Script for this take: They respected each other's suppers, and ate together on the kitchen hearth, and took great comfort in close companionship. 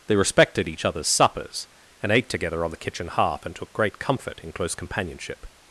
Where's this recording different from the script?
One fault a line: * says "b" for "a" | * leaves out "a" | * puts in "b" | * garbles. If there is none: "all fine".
all fine